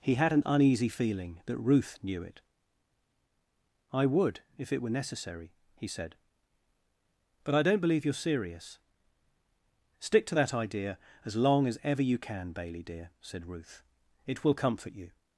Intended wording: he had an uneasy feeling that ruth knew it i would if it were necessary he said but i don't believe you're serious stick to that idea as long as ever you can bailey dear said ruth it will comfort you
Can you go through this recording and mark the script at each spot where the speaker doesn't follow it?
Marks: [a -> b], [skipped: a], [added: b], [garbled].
he had an uneasy feeling that ruth knew it i would if it were necessary he said but i don't believe you're serious stick to that idea as long as ever you can bailey dear said ruth it will comfort you